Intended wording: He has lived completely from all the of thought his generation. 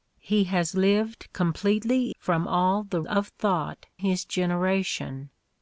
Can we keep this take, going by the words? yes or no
yes